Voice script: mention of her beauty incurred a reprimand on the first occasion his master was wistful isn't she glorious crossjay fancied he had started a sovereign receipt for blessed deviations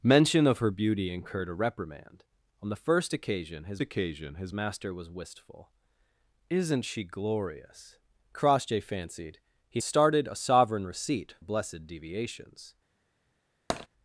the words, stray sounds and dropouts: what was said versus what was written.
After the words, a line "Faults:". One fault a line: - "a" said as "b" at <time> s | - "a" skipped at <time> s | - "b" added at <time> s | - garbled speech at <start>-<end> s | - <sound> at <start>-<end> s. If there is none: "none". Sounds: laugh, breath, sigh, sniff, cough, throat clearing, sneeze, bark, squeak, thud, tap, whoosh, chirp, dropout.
mention of her beauty incurred a reprimand on the first occasion his occasion his master was wistful isn't she glorious crossjay fancied he started a sovereign receipt blessed deviations
Faults:
- "occasion his" added at 3.8 s
- "had" skipped at 9.8 s
- "for" skipped at 11.4 s
- tap at 13.7-13.9 s